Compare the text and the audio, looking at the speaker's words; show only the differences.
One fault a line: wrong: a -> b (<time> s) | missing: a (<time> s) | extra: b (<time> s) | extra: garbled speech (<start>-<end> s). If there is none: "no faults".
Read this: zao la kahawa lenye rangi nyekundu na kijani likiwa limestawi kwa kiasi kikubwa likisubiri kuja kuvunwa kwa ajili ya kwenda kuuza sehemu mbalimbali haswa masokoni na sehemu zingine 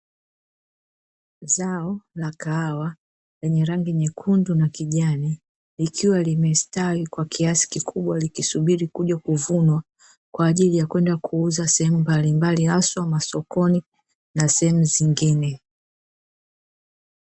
no faults